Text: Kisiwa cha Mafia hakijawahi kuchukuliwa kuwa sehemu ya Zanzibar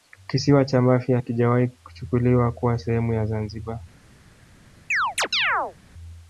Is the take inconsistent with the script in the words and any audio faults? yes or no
yes